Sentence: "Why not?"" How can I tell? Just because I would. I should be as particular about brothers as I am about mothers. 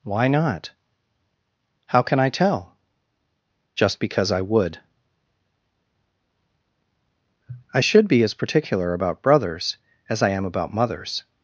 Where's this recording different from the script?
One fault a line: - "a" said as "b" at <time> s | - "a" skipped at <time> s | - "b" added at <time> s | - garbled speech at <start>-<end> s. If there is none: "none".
none